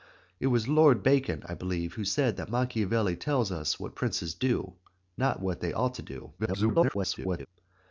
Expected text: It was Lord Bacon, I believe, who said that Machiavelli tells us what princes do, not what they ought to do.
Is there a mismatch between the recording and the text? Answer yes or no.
yes